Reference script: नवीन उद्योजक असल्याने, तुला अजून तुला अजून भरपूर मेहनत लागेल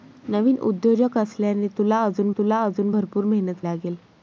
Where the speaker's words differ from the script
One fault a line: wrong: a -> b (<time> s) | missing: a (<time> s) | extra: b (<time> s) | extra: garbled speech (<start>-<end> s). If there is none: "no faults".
no faults